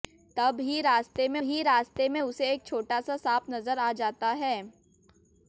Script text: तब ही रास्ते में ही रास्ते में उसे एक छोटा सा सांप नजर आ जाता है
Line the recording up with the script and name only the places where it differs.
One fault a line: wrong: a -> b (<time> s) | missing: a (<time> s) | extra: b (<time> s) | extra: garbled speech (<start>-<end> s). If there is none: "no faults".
no faults